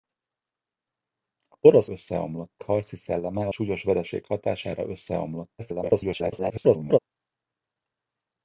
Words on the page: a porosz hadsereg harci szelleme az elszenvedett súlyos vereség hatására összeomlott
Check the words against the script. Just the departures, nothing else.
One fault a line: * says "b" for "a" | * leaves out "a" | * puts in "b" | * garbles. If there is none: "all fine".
* says "összeomlott" for "hadsereg"
* leaves out "az elszenvedett"
* garbles